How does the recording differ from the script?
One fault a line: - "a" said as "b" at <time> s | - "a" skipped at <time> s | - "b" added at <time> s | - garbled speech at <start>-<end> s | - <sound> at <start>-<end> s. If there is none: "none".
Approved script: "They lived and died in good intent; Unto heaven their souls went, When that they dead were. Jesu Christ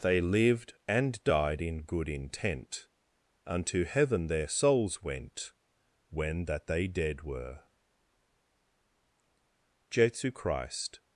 none